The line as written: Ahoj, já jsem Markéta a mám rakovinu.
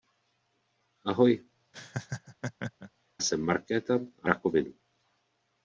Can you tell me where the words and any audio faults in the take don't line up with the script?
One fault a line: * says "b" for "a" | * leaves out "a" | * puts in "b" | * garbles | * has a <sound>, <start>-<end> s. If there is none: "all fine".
* leaves out "já"
* has a laugh, 1.7-2.9 s
* leaves out "mám"